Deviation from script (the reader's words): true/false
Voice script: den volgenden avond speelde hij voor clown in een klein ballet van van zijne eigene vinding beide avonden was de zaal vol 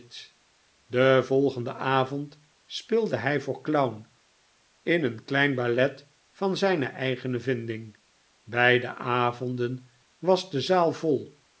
true